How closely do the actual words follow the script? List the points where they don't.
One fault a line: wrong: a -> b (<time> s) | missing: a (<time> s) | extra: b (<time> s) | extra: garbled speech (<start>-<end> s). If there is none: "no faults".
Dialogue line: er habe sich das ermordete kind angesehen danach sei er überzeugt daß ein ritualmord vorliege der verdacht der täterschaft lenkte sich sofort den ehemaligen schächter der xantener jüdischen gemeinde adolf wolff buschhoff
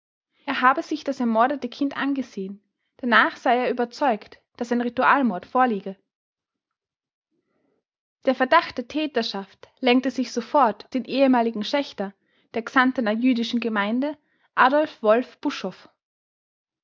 no faults